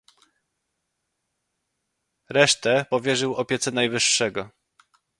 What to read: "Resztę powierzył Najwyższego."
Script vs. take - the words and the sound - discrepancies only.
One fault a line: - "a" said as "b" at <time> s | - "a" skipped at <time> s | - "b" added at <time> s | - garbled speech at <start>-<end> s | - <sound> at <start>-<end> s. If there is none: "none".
- "opiece" added at 3.3 s